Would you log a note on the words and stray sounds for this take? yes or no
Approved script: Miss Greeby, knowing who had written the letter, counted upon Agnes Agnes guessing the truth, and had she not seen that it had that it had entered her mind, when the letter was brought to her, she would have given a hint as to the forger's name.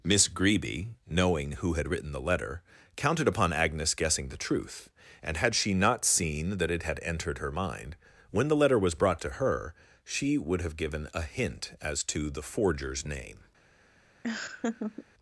yes